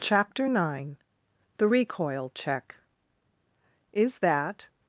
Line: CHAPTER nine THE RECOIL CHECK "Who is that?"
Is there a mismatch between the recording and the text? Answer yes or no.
yes